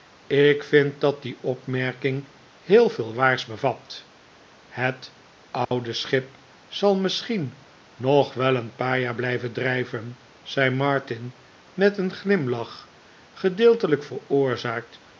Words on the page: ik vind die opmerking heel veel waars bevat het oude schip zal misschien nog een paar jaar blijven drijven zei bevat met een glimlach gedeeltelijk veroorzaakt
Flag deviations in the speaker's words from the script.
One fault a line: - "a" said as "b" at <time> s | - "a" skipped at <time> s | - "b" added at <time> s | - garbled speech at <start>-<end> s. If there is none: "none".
- "dat" added at 1.0 s
- "wel" added at 8.3 s
- "bevat" said as "martin" at 10.7 s